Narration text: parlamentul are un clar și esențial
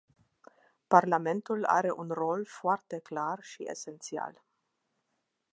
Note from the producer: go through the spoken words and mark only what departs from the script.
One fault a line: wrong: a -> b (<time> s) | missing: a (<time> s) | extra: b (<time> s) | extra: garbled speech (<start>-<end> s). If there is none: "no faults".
extra: rol foarte (2.1 s)